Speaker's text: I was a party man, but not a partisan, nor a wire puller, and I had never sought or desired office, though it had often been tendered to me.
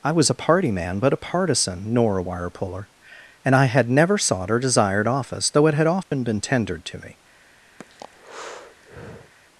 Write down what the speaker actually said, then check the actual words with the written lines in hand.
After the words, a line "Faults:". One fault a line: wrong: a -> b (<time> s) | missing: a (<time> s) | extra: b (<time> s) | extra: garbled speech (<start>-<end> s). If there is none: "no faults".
I was a party man, but a partisan, nor a wire puller, and I had never sought or desired office, though it had often been tendered to me.
Faults:
missing: not (1.1 s)